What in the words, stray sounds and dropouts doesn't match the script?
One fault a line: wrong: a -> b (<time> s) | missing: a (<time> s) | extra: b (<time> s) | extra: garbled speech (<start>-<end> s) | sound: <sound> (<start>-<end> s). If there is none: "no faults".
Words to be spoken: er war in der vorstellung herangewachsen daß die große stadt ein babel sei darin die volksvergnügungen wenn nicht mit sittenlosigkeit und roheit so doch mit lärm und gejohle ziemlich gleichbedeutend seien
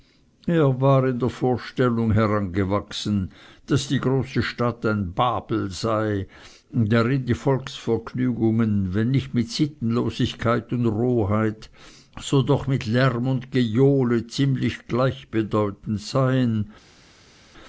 no faults